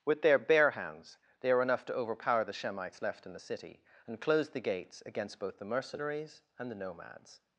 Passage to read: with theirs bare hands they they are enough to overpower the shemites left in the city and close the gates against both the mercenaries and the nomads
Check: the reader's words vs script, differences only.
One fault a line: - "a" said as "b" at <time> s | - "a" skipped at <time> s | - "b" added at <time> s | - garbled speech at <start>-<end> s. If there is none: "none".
- "theirs" said as "their" at 0.2 s
- "they" skipped at 1.5 s